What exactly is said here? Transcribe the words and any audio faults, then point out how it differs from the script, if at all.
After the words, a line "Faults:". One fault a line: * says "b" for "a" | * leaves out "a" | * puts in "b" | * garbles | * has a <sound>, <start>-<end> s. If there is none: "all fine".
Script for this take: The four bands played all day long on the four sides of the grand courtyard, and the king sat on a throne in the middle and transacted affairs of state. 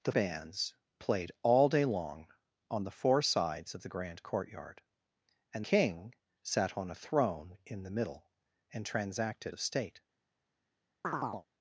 The bands played all day long on the four sides of the grand courtyard, and king sat on a throne in the middle and transacted of state.
Faults:
* leaves out "four"
* leaves out "the"
* leaves out "affairs"
* has a chirp, 11.0-11.5 s